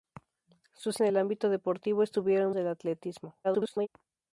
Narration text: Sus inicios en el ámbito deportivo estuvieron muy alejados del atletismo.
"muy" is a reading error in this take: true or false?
true